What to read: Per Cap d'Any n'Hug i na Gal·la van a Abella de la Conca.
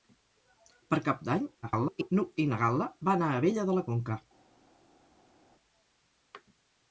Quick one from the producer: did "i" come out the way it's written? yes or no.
yes